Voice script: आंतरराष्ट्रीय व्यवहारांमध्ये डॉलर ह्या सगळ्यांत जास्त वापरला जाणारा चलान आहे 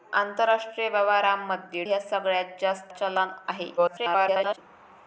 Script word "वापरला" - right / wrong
wrong